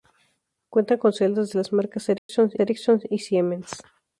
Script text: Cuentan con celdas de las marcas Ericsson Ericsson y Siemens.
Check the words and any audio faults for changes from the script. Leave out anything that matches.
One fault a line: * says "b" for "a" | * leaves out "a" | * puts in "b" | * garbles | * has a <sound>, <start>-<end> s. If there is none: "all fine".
* has a dropout, 2.2-2.3 s